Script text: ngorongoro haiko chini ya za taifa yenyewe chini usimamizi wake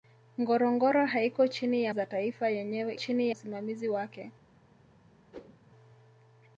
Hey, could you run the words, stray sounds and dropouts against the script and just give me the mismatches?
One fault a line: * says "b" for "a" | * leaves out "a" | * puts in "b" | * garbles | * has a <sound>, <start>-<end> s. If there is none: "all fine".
* has a whoosh, 5.3-5.6 s